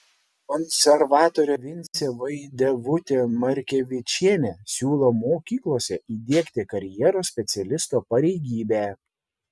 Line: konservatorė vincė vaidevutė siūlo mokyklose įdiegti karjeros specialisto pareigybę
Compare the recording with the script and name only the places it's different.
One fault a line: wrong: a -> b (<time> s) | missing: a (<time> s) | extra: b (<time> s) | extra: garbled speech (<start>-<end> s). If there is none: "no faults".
extra: markevičienė (3.4 s)